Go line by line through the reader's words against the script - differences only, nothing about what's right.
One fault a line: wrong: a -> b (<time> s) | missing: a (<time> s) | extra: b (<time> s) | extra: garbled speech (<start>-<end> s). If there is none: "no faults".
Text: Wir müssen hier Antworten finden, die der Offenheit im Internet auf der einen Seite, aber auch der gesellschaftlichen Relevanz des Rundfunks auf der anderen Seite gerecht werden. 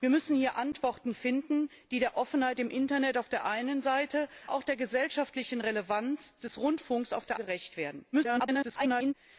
missing: aber (4.3 s)
missing: anderen Seite (7.4 s)
extra: garbled speech (8.1-9.1 s)